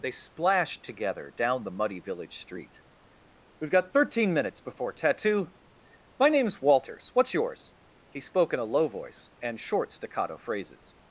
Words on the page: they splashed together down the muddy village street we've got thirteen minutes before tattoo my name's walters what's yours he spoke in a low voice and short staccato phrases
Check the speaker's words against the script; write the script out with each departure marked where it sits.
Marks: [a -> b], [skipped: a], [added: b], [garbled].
they splashed together down the muddy village street we've got thirteen minutes before tattoo my name's walters what's yours he spoke in a low voice and short staccato phrases